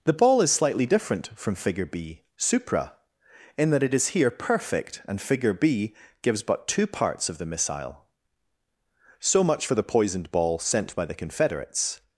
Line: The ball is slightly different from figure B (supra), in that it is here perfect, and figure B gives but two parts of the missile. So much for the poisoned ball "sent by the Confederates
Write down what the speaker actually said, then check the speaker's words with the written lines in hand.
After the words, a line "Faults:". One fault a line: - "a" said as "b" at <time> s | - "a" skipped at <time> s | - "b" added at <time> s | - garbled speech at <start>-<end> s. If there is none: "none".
The ball is slightly different from figure B (supra), in that it is here perfect, and figure B gives but two parts of the missile. So much for the poisoned ball "sent by the Confederates
Faults:
none